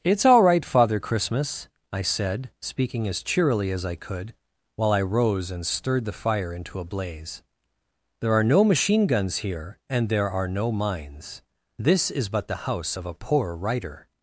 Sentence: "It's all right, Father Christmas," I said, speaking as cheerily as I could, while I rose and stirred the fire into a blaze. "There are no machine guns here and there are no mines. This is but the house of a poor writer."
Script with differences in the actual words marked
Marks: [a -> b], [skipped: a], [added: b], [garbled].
"It's all right, Father Christmas," I said, speaking as cheerily as I could, while I rose and stirred the fire into a blaze. "There are no machine guns here and there are no mines. This is but the house of a poor writer."